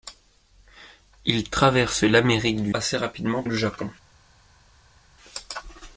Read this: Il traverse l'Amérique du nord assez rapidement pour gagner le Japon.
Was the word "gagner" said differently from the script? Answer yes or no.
yes